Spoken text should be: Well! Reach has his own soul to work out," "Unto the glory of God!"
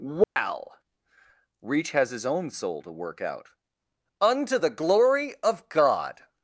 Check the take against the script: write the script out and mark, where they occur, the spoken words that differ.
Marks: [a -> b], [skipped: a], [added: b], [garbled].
Well! Reach has his own soul to work out," "Unto the glory of God!"